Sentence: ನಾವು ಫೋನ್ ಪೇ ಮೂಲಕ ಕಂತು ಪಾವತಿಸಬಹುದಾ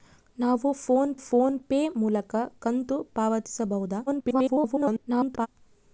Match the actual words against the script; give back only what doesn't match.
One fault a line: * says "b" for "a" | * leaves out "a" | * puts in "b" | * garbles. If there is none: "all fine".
* puts in "ಫೋನ್"
* garbles